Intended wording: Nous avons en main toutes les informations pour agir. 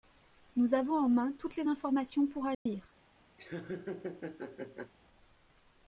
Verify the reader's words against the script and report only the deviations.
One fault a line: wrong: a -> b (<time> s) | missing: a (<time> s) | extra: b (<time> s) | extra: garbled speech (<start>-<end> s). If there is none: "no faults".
no faults